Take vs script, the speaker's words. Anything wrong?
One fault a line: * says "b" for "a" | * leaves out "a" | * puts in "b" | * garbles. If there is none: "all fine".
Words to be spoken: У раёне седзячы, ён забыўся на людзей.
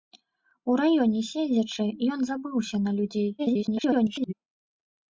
* garbles